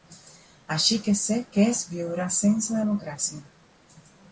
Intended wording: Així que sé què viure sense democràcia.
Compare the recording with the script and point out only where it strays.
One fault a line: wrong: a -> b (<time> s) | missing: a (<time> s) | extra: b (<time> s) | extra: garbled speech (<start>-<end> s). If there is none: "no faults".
extra: és (1.7 s)